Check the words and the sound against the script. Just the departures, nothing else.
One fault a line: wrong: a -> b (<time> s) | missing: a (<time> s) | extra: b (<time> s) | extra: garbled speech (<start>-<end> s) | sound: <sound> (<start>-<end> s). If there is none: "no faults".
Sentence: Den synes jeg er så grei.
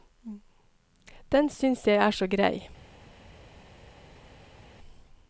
no faults